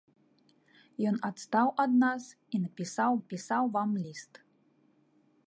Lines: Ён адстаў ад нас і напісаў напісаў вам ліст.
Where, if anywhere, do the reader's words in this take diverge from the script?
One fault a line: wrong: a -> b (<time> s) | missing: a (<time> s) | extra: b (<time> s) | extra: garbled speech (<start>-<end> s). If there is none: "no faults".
no faults